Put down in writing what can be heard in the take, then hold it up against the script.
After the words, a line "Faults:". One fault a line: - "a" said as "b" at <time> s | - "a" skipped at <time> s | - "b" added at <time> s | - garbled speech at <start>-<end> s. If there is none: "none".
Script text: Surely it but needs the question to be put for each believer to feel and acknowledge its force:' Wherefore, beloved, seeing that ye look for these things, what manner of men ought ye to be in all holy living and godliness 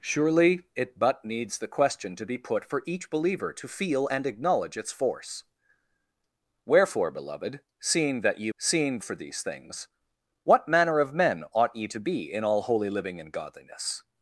Surely it but needs the question to be put for each believer to feel and acknowledge its force:' Wherefore, beloved, seeing that ye seeing for these things, what manner of men ought ye to be in all holy living and godliness
Faults:
- "look" said as "seeing" at 8.6 s